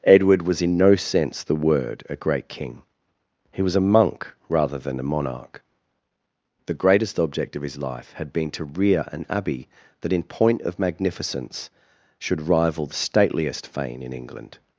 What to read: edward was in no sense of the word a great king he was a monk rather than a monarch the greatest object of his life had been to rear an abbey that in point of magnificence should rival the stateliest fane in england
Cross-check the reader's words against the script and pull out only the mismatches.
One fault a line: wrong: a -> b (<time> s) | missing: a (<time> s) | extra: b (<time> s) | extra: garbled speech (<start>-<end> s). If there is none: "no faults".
missing: of (1.4 s)